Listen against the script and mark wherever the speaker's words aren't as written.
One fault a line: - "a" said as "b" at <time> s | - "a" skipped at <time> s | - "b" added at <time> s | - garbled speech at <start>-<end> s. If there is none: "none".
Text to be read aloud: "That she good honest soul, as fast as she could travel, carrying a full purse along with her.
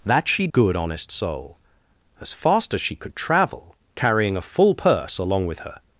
none